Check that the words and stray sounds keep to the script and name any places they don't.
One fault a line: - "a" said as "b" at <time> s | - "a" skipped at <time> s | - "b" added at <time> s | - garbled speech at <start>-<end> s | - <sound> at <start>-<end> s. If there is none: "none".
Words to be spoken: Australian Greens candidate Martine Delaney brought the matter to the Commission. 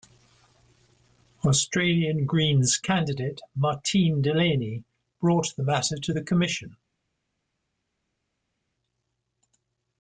none